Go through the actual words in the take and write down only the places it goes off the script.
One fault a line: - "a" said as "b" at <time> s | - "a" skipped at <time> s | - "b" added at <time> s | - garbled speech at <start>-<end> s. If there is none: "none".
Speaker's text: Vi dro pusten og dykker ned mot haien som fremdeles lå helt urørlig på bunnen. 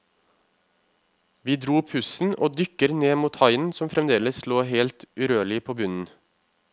none